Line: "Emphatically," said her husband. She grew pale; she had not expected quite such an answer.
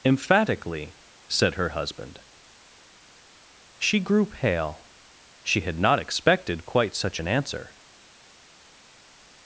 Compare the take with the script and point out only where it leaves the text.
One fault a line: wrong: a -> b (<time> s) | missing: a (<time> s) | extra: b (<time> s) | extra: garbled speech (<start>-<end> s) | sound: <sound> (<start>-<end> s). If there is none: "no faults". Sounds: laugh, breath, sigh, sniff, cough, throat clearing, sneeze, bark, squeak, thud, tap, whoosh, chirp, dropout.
no faults